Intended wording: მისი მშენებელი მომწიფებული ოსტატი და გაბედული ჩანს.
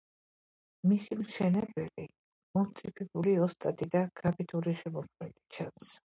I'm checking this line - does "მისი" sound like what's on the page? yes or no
yes